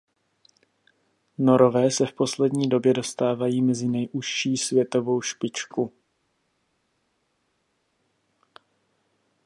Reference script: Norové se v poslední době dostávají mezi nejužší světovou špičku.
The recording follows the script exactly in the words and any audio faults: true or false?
true